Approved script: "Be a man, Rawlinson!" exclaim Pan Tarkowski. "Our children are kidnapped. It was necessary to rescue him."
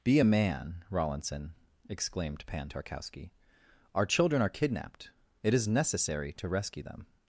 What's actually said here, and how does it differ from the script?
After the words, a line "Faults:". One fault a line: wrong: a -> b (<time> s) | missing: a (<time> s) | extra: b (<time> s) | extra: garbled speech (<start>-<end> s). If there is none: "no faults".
"Be a man, Rawlinson!" exclaimed Pan Tarkowski. "Our children are kidnapped. It is necessary to rescue them."
Faults:
wrong: exclaim -> exclaimed (1.9 s)
wrong: was -> is (5.5 s)
wrong: him -> them (6.8 s)